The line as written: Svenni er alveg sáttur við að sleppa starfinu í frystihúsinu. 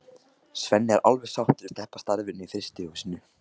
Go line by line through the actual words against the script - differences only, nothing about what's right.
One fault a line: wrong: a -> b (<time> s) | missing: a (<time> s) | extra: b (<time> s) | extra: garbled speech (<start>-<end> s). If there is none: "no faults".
missing: við (1.7 s)